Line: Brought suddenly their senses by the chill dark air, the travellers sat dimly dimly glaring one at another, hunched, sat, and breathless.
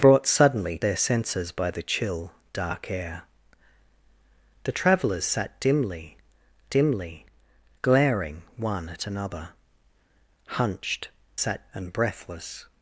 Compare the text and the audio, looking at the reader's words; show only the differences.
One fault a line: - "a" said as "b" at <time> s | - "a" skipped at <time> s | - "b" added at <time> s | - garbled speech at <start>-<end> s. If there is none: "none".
none